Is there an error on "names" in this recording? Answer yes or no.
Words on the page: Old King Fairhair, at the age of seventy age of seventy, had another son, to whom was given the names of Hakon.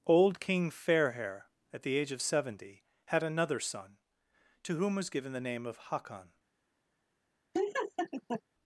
yes